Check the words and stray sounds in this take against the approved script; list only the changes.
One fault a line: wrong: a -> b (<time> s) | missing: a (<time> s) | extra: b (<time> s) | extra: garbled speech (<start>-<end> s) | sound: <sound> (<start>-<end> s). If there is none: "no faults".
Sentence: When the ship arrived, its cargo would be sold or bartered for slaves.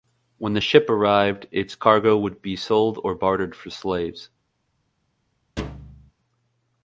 sound: thud (5.6-6.1 s)